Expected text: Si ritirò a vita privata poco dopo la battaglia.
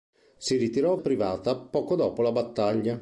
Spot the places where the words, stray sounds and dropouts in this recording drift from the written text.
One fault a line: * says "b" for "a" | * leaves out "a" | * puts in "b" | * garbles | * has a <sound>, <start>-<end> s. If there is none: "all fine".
* leaves out "vita"